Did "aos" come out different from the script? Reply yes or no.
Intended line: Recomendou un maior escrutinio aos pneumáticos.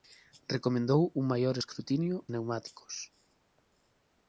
yes